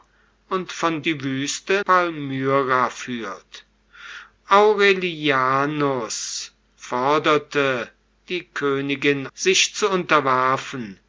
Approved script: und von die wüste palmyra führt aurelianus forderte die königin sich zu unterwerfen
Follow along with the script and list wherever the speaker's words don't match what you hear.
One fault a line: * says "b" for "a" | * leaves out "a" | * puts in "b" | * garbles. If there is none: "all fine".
all fine